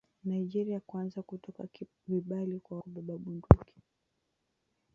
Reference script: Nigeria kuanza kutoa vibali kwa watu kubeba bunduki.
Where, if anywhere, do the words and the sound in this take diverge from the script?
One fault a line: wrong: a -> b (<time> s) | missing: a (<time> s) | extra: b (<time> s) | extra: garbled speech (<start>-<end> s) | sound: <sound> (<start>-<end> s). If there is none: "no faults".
missing: watu (2.8 s)